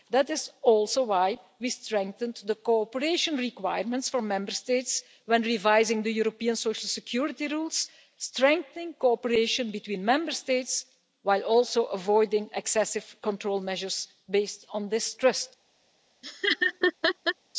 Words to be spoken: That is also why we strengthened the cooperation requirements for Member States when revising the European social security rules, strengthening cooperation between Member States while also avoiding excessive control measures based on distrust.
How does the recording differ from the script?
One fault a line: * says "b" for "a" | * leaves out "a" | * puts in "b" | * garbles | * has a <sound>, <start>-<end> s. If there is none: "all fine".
* has a laugh, 16.2-17.3 s